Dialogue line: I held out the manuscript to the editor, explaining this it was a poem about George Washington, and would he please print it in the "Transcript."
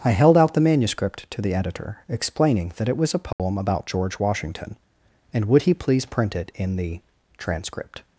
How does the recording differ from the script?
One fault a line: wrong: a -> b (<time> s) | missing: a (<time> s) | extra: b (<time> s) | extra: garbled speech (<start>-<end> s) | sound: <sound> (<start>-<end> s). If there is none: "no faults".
wrong: this -> that (2.8 s)
sound: dropout (3.3-3.4 s)